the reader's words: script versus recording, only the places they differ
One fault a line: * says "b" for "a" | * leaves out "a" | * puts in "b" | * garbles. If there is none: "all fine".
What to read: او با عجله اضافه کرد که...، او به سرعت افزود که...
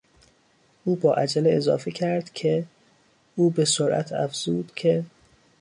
all fine